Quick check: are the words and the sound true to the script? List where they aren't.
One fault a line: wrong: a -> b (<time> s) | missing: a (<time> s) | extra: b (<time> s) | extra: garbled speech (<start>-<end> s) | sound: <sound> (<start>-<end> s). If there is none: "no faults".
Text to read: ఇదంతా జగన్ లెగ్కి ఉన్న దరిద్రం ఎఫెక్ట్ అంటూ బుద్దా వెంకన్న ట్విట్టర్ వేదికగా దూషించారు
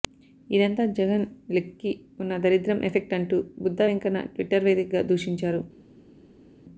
no faults